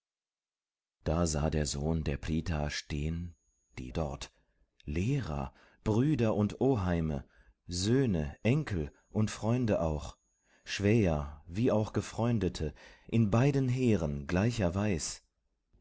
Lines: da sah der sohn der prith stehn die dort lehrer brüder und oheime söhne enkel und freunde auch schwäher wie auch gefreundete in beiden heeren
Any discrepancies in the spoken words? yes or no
no